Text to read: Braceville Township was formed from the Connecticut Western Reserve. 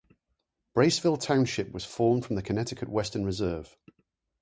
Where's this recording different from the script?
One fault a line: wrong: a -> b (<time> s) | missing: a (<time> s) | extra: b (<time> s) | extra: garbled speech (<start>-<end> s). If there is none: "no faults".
no faults